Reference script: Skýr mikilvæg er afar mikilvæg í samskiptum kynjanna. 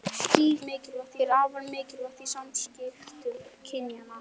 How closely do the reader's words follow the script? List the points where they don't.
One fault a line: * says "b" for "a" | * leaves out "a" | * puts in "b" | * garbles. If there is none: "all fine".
all fine